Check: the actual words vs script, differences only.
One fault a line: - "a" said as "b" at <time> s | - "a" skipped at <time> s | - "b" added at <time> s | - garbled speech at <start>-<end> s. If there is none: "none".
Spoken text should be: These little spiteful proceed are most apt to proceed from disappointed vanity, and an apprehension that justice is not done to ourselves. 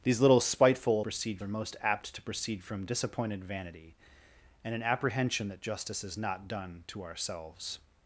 none